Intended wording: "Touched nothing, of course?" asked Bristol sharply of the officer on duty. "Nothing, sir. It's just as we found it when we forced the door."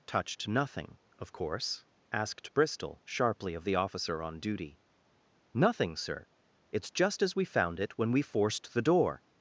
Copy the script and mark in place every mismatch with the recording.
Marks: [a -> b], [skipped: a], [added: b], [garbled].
"Touched nothing, of course?" asked Bristol sharply of the officer on duty. "Nothing, sir. It's just as we found it when we forced the door."